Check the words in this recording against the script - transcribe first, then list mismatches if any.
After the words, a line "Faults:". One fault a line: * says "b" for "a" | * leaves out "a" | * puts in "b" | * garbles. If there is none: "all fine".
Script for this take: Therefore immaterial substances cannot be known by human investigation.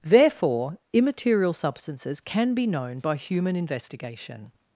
Therefore immaterial substances can be known by human investigation.
Faults:
* says "can" for "cannot"